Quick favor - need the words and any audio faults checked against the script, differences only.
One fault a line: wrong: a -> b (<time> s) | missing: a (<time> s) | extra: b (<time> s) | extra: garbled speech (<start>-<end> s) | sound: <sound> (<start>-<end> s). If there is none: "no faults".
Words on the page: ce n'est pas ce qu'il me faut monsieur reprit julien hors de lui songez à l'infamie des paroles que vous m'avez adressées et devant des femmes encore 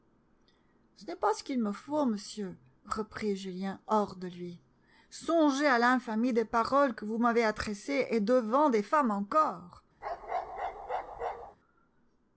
sound: bark (10.0-11.6 s)